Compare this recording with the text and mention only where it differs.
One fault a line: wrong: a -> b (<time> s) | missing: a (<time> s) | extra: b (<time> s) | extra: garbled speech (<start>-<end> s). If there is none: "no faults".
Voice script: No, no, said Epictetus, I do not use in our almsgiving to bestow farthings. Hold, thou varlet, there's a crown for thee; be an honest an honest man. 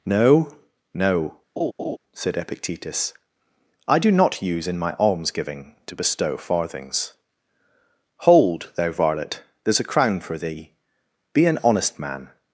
wrong: our -> my (4.8 s)
missing: an honest (12.0 s)